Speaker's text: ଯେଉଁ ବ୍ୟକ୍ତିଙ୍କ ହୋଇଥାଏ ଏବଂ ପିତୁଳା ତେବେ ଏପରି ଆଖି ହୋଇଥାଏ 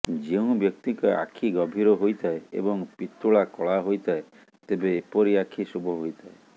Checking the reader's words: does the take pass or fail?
fail